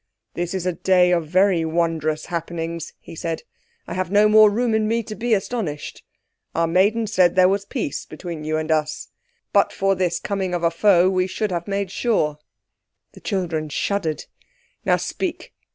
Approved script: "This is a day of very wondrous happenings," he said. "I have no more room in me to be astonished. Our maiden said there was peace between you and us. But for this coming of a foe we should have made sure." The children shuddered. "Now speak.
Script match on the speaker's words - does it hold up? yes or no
yes